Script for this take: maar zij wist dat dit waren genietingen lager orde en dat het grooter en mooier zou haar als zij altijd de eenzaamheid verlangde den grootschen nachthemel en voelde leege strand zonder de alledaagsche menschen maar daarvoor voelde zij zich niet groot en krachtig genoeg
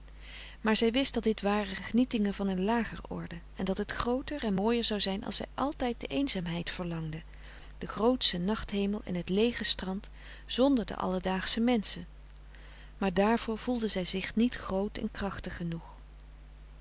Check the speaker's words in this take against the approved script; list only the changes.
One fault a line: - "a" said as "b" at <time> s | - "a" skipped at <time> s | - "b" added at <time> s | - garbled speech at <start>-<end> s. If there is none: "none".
- "van een" added at 2.3 s
- "haar" said as "zijn" at 5.0 s
- "voelde" said as "het" at 9.1 s